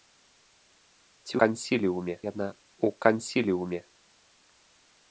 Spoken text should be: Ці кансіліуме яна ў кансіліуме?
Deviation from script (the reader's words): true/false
false